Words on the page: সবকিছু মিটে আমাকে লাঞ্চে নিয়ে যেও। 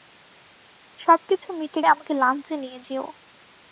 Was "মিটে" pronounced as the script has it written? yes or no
yes